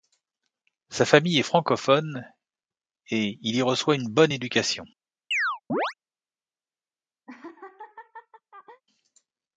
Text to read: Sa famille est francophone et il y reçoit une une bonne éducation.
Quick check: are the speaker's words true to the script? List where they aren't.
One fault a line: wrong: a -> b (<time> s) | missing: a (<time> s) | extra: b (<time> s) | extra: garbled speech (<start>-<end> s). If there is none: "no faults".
missing: une (4.1 s)